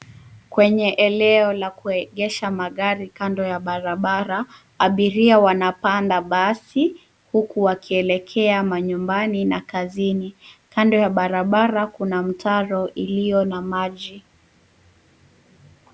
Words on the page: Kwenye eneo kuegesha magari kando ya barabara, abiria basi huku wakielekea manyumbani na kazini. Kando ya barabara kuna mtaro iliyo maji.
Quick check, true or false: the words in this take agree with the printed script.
false